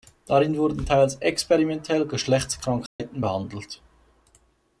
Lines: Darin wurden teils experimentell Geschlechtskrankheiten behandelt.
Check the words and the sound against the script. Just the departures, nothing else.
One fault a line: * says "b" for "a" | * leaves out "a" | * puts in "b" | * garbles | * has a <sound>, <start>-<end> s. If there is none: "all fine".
* has a dropout, 2.9-3.0 s